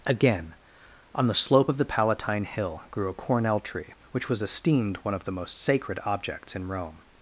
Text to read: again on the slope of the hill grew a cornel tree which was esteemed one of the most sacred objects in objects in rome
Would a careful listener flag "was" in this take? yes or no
no